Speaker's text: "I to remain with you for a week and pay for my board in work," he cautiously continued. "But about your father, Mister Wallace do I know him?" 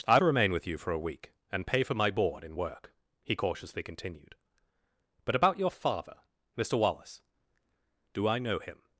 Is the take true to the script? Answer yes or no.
yes